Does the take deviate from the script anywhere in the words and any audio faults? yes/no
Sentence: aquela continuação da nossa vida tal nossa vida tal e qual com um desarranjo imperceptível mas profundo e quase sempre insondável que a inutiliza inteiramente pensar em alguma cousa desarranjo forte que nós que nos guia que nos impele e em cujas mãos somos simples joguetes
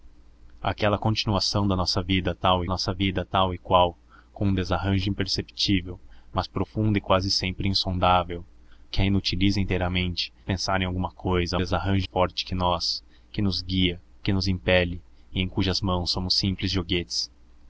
no